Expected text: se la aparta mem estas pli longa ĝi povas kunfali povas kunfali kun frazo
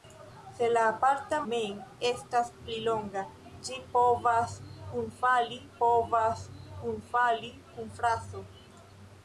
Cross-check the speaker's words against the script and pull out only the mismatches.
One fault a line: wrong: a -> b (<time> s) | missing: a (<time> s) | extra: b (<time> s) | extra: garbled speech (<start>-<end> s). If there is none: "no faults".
no faults